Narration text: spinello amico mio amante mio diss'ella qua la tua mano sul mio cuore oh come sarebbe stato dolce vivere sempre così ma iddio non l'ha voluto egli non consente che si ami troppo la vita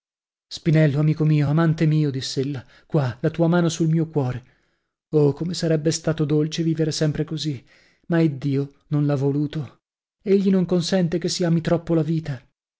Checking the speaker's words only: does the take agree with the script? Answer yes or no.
yes